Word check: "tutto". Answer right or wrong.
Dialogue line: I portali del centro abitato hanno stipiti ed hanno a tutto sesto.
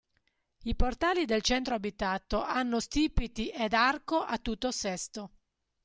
right